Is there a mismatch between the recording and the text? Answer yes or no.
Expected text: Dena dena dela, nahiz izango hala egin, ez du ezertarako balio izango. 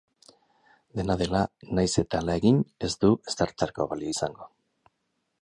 yes